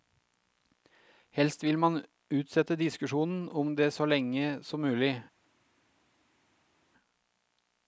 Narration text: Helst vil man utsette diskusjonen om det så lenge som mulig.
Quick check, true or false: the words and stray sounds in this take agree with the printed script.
true